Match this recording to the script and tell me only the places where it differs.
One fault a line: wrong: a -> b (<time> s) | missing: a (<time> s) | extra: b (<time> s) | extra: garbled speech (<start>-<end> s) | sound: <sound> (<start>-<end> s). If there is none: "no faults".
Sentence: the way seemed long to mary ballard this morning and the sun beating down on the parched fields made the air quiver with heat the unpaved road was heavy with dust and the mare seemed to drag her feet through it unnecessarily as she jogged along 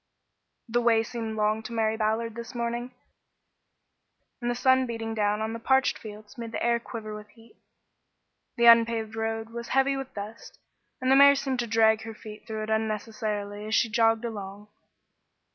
no faults